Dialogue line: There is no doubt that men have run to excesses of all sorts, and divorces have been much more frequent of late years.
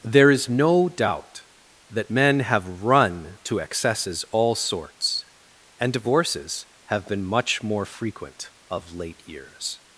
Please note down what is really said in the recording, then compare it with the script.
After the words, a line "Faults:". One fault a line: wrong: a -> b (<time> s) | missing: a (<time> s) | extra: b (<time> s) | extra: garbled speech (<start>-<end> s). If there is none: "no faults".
There is no doubt that men have run to excesses all sorts, and divorces have been much more frequent of late years.
Faults:
missing: of (4.2 s)